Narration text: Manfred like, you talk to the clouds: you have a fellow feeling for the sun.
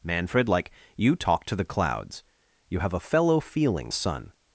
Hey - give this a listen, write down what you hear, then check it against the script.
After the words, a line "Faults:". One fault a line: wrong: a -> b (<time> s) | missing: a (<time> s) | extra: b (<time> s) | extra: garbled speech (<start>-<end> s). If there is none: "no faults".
Manfred like, you talk to the clouds: you have a fellow feeling sun.
Faults:
missing: for the (3.9 s)